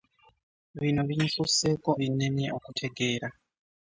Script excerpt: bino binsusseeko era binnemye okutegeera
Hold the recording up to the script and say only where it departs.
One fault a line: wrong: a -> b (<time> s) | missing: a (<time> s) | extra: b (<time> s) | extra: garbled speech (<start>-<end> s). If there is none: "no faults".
missing: era (1.9 s)